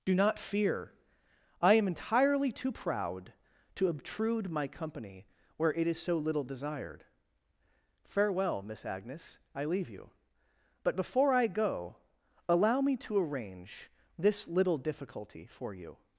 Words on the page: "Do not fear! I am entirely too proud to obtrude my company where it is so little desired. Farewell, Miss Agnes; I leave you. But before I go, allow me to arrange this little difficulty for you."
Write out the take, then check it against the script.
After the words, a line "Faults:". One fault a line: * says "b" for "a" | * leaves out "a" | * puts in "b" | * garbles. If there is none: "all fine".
"Do not fear! I am entirely too proud to obtrude my company where it is so little desired. Farewell, Miss Agnes; I leave you. But before I go, allow me to arrange this little difficulty for you."
Faults:
all fine